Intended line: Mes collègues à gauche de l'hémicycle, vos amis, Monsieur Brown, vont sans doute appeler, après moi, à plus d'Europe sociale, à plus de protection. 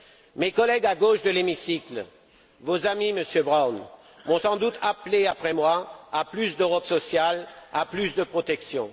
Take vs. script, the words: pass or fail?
pass